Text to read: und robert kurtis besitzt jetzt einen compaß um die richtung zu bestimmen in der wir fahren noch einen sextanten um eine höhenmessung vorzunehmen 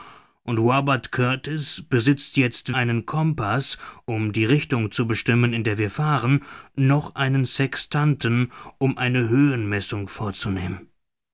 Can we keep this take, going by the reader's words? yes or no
yes